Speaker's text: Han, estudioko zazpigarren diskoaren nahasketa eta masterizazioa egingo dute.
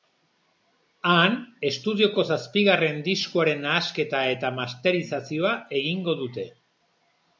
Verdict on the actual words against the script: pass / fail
pass